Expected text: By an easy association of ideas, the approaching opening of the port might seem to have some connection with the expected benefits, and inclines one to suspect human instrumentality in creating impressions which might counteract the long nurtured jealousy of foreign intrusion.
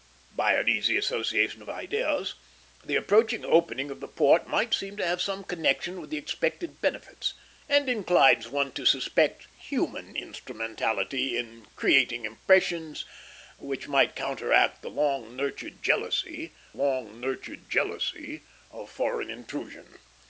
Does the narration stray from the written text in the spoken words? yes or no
yes